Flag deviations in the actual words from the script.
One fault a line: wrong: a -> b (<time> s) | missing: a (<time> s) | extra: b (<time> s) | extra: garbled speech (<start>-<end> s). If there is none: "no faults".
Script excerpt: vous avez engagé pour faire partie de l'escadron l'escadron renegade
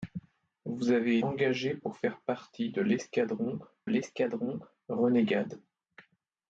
no faults